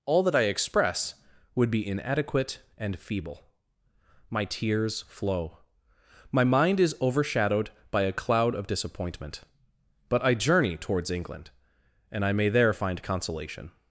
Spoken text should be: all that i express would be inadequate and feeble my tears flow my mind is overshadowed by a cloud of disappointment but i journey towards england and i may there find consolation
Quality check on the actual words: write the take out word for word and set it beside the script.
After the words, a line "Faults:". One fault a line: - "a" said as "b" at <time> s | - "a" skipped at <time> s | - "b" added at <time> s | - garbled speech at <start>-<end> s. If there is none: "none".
all that i express would be inadequate and feeble my tears flow my mind is overshadowed by a cloud of disappointment but i journey towards england and i may there find consolation
Faults:
none